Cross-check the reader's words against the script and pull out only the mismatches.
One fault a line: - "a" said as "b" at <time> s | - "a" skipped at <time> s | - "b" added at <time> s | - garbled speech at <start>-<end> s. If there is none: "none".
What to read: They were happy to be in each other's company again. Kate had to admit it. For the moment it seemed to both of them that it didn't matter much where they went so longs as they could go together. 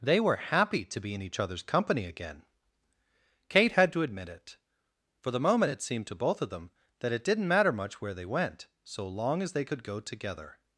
- "longs" said as "long" at 9.1 s